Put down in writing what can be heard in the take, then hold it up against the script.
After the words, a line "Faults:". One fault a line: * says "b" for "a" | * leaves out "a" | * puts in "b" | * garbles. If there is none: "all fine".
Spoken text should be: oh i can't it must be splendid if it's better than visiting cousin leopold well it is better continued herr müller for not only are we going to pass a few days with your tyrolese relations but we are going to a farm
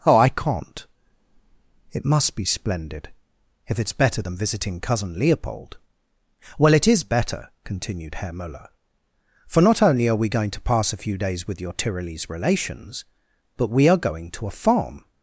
oh i can't it must be splendid if it's better than visiting cousin leopold well it is better continued herr müller for not only are we going to pass a few days with your tyrolese relations but we are going to a farm
Faults:
all fine